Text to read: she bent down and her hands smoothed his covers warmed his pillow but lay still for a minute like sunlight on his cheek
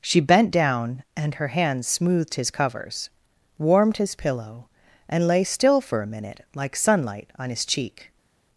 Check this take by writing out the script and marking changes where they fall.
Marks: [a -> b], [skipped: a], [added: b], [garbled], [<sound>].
she bent down and her hands smoothed his covers warmed his pillow [but -> and] lay still for a minute like sunlight on his cheek